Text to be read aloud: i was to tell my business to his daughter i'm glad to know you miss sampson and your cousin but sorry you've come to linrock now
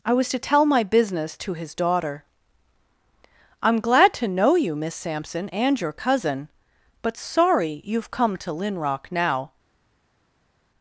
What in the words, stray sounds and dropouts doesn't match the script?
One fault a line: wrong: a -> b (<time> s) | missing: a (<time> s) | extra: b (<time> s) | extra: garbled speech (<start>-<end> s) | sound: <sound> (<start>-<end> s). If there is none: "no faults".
no faults